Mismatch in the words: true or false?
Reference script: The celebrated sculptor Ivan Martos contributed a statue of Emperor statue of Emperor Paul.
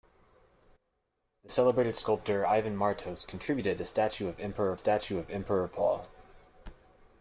false